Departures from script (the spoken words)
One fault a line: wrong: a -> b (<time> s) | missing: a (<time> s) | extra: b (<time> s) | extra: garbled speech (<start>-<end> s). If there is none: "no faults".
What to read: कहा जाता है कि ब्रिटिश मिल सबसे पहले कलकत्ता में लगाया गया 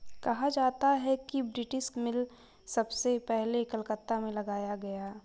no faults